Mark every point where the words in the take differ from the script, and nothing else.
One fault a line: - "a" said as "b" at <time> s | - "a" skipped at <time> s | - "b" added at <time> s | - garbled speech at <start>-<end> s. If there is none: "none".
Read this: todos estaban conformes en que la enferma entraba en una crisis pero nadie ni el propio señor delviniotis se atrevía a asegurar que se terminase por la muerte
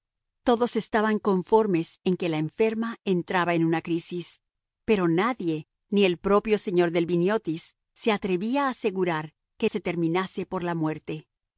none